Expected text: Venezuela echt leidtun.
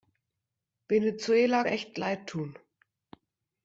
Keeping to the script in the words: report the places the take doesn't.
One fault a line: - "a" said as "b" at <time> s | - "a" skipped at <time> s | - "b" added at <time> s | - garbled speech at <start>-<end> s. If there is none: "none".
none